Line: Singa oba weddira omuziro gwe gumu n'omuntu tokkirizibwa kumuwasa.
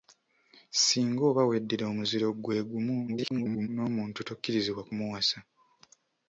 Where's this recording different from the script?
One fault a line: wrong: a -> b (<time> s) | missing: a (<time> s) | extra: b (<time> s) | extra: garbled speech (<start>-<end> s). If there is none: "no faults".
extra: garbled speech (3.1-3.7 s)